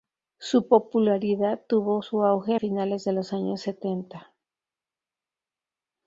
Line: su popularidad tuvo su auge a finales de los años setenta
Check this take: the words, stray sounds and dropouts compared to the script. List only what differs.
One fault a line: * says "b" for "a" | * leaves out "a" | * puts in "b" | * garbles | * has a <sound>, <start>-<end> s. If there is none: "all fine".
all fine